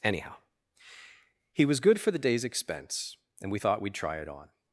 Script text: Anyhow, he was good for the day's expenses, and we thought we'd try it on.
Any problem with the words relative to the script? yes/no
yes